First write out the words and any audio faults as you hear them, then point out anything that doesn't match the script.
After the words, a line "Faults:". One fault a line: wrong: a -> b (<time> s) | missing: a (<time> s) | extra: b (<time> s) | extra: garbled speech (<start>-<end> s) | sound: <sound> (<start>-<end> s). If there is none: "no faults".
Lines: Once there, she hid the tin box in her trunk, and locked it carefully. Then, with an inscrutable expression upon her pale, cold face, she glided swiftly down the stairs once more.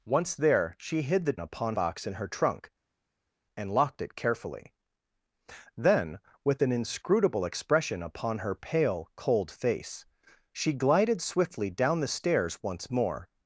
Once there, she hid the upon box in her trunk, and locked it carefully. Then, with an inscrutable expression upon her pale, cold face, she glided swiftly down the stairs once more.
Faults:
wrong: tin -> upon (1.4 s)